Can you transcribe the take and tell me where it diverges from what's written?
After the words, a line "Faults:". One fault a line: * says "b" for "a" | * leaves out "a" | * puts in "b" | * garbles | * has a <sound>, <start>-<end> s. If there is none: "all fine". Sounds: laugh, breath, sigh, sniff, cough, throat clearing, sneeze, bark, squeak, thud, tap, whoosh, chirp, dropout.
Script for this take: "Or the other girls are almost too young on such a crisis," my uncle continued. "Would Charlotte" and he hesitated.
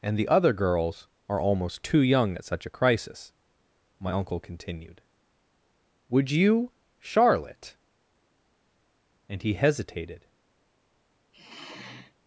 "And the other girls are almost too young at such a crisis," my uncle continued. "Would you, Charlotte" and he hesitated.
Faults:
* says "And" for "Or"
* says "at" for "on"
* puts in "you"
* has a sigh, 11.3-12.1 s